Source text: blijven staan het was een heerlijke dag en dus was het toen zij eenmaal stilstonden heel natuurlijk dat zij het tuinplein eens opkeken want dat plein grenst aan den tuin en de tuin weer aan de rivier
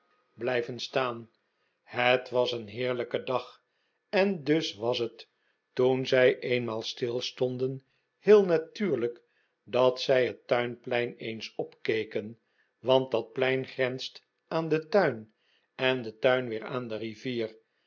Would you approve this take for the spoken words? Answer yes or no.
yes